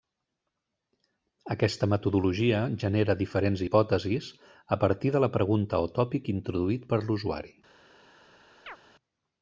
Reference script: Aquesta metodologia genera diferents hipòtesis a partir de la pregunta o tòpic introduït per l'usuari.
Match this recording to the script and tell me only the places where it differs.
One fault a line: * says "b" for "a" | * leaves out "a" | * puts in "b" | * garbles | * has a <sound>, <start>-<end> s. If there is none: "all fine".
* has a chirp, 8.7-8.8 s